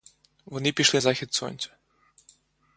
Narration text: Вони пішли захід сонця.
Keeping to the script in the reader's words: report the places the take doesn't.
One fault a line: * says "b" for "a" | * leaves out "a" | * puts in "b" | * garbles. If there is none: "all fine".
all fine